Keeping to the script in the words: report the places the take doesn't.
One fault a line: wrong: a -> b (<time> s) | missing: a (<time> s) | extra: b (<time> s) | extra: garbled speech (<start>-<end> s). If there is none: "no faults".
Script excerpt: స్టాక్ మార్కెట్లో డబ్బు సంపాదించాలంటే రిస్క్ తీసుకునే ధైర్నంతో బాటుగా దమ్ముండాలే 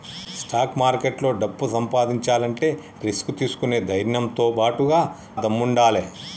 no faults